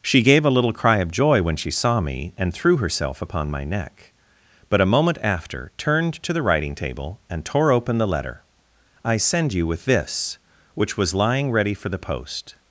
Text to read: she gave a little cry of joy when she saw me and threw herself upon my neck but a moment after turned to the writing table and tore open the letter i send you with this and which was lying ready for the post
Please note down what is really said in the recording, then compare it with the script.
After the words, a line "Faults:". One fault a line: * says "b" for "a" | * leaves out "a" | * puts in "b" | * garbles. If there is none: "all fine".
she gave a little cry of joy when she saw me and threw herself upon my neck but a moment after turned to the writing table and tore open the letter i send you with this which was lying ready for the post
Faults:
* leaves out "and"